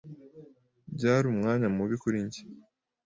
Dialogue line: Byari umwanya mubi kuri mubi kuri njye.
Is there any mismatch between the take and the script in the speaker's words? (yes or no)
yes